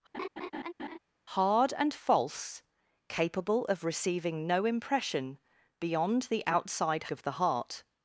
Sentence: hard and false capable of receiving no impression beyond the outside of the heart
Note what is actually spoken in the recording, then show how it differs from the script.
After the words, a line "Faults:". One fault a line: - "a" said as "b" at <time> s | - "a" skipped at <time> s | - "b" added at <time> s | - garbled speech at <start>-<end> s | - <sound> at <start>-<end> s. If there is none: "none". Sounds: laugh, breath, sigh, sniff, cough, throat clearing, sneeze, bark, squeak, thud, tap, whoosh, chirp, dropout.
hard and false capable of receiving no impression beyond the outside of the heart
Faults:
- laugh at 0.1-1.0 s